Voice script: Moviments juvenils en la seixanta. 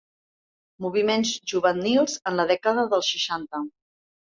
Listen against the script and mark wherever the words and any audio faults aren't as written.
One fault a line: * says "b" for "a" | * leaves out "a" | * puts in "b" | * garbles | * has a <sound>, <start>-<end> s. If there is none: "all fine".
* puts in "dècada dels"